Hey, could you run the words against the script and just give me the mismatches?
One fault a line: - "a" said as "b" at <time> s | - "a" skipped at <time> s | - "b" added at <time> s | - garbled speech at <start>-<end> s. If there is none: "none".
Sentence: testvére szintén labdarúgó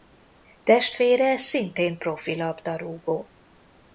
- "profi" added at 2.0 s